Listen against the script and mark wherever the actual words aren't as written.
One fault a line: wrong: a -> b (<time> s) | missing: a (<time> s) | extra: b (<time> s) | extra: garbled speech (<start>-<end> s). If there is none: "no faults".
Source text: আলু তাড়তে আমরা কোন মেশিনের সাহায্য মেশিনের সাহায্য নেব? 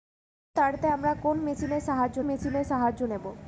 no faults